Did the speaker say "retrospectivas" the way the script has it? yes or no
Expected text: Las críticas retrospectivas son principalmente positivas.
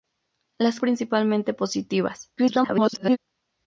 no